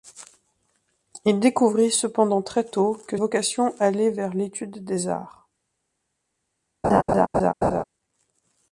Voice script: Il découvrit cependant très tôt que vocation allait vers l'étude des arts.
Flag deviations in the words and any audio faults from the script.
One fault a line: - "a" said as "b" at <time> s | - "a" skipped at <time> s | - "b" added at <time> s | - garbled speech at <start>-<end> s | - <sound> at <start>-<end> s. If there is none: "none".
- laugh at 6.8-7.8 s